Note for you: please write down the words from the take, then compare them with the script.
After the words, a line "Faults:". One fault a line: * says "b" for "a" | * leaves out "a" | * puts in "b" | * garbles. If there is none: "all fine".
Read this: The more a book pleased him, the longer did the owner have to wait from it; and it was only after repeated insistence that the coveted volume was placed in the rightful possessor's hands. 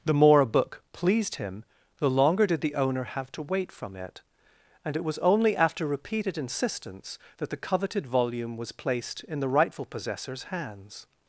The more a book pleased him, the longer did the owner have to wait from it; and it was only after repeated insistence that the coveted volume was placed in the rightful possessor's hands.
Faults:
all fine